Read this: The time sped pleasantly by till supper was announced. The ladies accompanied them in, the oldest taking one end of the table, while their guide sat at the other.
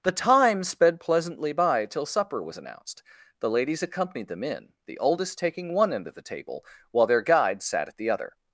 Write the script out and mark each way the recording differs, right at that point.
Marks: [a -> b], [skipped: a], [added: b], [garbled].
The time sped pleasantly by till supper was announced. The ladies accompanied them in, the oldest taking one end of the table, while their guide sat at the other.